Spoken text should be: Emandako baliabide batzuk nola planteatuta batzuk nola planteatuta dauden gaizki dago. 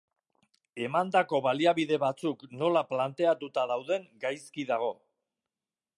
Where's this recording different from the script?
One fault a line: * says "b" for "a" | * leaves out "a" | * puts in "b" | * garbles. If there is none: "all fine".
* leaves out "batzuk nola planteatuta"